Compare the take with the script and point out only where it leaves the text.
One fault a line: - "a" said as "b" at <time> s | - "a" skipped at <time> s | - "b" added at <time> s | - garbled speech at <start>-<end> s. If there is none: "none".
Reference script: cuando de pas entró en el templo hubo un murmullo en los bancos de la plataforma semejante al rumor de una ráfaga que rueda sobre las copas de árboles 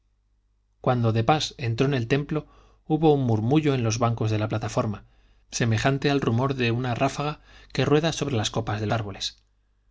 none